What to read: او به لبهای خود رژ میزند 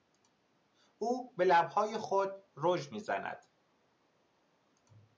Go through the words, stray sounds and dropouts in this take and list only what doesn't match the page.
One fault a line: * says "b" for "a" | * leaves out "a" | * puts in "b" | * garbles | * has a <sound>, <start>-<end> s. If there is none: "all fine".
all fine